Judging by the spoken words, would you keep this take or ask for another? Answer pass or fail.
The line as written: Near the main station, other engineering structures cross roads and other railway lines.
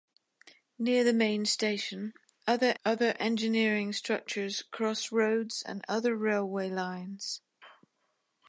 fail